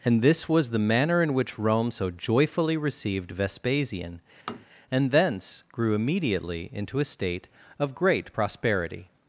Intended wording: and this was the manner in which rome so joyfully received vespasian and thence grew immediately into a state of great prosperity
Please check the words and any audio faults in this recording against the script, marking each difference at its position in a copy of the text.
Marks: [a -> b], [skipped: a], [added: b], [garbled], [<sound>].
and this was the manner in which rome so joyfully received vespasian [tap] and thence grew immediately into a state of great prosperity